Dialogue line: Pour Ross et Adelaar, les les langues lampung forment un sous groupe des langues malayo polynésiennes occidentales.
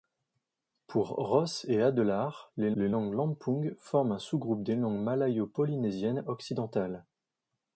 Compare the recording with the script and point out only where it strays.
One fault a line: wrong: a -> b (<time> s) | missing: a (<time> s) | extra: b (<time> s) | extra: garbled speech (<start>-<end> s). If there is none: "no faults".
no faults